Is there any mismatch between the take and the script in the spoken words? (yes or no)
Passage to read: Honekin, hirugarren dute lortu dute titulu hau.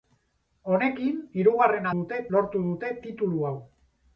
no